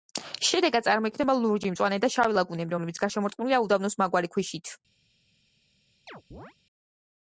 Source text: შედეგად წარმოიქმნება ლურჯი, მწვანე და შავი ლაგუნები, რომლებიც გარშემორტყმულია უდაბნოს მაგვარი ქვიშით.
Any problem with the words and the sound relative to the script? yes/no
yes